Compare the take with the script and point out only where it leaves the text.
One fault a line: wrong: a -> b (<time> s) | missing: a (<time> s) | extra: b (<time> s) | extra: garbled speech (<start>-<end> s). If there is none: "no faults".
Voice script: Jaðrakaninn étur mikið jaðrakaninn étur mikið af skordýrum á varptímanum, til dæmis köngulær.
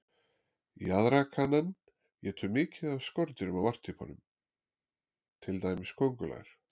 missing: jaðrakaninn étur mikið (2.9 s)